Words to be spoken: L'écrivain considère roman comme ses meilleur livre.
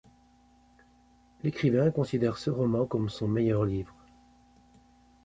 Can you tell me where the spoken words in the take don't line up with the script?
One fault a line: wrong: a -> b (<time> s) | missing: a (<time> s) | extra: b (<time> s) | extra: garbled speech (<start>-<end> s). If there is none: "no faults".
extra: ce (2.4 s)
wrong: ses -> son (3.1 s)